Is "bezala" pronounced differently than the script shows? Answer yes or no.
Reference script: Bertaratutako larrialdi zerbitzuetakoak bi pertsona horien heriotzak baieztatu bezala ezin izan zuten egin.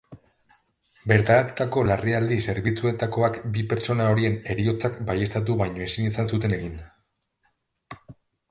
yes